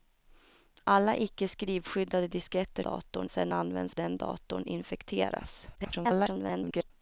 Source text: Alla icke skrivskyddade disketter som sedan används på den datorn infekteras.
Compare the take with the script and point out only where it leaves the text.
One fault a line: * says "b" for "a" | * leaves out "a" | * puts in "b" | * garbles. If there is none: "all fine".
* says "datorn" for "som"
* leaves out "på"
* garbles